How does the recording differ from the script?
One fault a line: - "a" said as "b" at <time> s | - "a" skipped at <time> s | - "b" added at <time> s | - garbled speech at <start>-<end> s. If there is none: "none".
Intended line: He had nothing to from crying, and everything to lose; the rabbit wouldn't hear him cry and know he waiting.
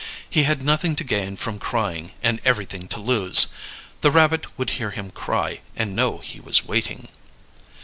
- "gain" added at 1.0 s
- "wouldn't" said as "would" at 4.6 s
- "was" added at 6.4 s